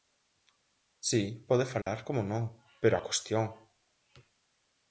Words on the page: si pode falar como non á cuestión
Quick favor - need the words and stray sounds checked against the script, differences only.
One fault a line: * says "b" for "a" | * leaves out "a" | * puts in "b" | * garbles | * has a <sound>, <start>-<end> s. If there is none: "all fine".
* has a dropout, 1.8-1.9 s
* puts in "pero"